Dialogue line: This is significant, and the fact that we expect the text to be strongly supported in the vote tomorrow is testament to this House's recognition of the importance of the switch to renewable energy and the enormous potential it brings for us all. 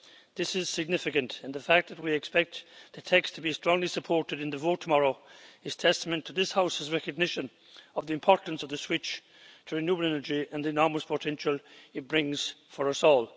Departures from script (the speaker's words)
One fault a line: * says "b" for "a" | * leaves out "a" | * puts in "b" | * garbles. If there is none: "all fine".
all fine